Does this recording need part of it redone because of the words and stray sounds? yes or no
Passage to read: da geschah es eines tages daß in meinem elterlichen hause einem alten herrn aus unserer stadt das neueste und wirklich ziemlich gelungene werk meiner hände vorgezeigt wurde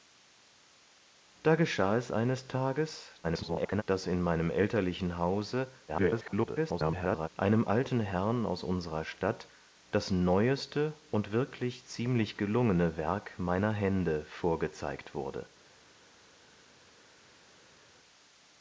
yes